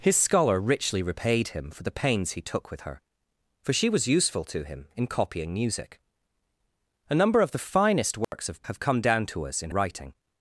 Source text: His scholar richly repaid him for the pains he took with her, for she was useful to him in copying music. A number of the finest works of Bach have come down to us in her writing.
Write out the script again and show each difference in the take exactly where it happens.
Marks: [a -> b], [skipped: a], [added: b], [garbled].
His scholar richly repaid him for the pains he took with her, for she was useful to him in copying music. A number of the finest works of [skipped: Bach] have come down to us in [skipped: her] writing.